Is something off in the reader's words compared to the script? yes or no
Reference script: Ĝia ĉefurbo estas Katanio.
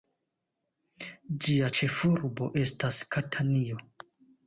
no